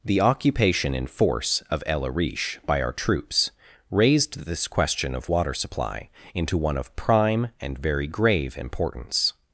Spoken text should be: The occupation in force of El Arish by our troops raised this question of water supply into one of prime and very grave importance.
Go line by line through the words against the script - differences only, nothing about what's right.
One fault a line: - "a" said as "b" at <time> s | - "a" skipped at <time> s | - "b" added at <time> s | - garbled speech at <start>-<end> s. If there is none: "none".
none